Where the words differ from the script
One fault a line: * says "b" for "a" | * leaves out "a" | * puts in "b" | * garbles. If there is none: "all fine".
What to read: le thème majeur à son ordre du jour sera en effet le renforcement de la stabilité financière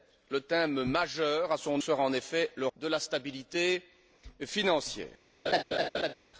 * leaves out "ordre du jour"
* leaves out "renforcement"